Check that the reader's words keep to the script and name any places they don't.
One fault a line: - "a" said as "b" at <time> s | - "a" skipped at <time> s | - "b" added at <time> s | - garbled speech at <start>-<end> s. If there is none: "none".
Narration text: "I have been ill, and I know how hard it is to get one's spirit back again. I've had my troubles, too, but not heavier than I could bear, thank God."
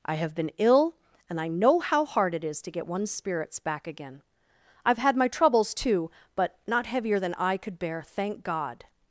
- "spirit" said as "spirits" at 3.1 s